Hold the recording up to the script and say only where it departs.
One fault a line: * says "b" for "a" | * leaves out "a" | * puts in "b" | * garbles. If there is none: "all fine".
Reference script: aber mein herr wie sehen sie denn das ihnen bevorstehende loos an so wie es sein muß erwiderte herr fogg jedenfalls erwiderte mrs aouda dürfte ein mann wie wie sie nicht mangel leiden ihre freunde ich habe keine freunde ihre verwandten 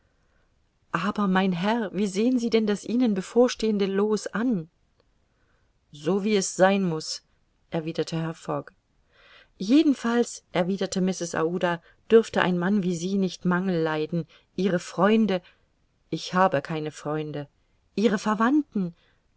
* leaves out "wie"